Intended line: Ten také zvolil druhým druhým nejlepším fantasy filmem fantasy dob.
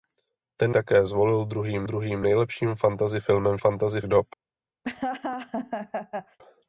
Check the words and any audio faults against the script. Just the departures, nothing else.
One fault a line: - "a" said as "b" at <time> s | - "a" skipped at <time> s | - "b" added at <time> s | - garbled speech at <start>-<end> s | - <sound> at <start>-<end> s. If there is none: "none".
- laugh at 4.8-6.4 s